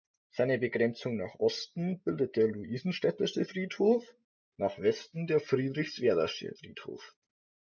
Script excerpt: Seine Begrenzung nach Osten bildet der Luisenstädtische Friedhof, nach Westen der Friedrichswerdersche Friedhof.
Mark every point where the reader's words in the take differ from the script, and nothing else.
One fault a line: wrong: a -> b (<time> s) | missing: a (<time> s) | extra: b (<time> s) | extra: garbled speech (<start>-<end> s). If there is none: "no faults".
no faults